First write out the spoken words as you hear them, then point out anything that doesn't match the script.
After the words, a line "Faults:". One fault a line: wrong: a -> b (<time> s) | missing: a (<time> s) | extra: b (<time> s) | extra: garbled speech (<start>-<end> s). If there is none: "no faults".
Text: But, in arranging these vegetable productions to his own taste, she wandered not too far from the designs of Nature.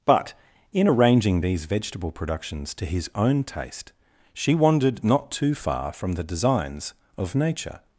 But, in arranging these vegetable productions to his own taste, she wandered not too far from the designs of Nature.
Faults:
no faults